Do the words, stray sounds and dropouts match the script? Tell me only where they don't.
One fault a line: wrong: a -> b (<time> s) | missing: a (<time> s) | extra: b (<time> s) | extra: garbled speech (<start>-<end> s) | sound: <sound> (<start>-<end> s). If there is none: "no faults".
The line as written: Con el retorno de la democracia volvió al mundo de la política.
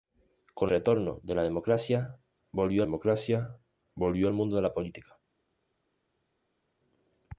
missing: el (0.7 s)
extra: democracia volvió (2.8 s)